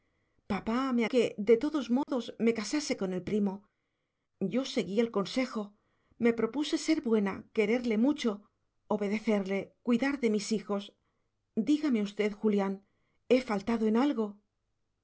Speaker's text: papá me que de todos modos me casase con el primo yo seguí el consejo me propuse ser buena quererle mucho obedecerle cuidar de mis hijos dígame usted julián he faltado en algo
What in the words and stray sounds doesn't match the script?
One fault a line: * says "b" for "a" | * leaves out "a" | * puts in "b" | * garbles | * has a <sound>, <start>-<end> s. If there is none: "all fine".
* has a dropout, 2.0-2.1 s